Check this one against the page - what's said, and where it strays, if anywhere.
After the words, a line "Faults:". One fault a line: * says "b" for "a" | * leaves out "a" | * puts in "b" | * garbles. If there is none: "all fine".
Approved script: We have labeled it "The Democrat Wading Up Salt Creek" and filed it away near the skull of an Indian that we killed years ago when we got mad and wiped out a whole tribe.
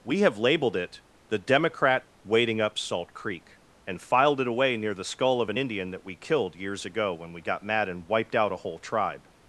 We have labeled it "The Democrat Wading Up Salt Creek" and filed it away near the skull of an Indian that we killed years ago when we got mad and wiped out a whole tribe.
Faults:
all fine